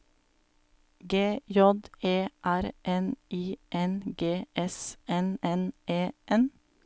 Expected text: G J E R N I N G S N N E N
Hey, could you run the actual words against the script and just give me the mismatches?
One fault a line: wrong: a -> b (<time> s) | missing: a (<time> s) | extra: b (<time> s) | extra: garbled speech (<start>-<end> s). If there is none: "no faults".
no faults